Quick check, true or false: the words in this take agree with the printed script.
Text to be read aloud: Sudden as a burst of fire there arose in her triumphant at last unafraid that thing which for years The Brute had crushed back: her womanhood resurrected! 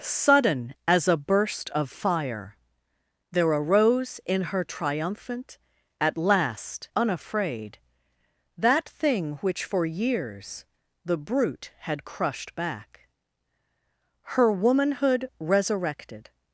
true